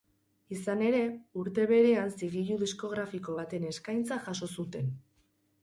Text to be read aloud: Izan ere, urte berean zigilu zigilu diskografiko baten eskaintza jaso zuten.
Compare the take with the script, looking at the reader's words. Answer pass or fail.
fail